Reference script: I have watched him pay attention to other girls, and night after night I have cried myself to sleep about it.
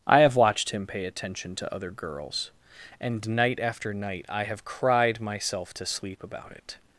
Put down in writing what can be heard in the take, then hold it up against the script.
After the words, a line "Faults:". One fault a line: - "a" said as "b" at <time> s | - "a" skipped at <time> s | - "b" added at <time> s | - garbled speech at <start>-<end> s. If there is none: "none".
I have watched him pay attention to other girls, and night after night I have cried myself to sleep about it.
Faults:
none